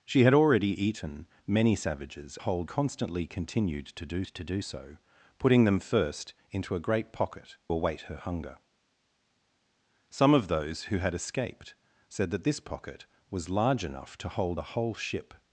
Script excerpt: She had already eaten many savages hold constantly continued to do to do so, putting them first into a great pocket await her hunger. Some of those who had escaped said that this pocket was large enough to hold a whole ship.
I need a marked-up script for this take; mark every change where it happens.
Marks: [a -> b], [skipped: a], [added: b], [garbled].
She had already eaten many savages hold constantly continued to do to do so, putting them first into a great pocket await her hunger. Some of those who had escaped said that this pocket was large enough to hold a whole ship.